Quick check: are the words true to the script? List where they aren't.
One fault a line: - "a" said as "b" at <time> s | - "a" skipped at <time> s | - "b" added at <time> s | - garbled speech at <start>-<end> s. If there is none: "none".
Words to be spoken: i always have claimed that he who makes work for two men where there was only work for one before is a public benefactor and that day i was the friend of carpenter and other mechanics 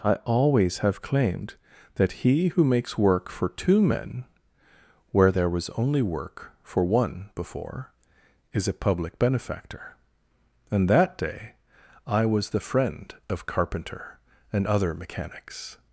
none